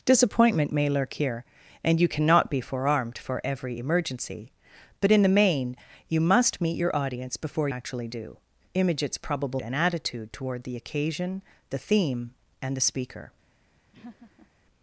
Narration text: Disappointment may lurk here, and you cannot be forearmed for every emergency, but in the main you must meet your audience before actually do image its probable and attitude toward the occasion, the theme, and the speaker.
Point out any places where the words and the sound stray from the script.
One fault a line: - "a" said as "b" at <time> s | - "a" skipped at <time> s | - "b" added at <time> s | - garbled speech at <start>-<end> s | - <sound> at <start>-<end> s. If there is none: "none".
- laugh at 13.9-14.5 s